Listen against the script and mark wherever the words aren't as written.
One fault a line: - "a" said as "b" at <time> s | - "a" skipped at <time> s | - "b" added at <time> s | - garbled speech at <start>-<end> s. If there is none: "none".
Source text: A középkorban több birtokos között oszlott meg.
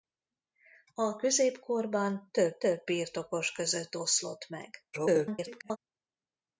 - "több" added at 2.6 s
- garbled speech at 4.9-5.8 s